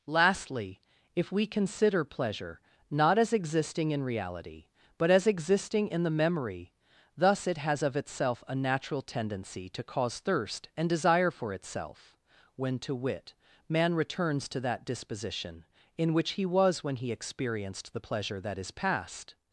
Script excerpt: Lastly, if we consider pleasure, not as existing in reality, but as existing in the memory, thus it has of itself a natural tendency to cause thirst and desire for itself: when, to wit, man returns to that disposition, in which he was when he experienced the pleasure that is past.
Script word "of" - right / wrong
right